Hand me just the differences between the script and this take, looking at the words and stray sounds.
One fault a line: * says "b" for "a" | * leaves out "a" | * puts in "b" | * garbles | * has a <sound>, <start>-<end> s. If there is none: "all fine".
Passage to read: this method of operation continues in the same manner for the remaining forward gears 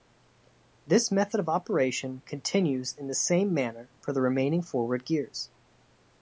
all fine